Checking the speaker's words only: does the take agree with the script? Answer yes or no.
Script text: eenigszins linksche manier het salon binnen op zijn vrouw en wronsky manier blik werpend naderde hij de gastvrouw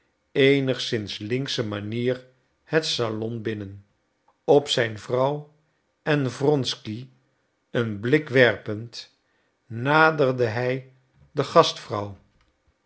no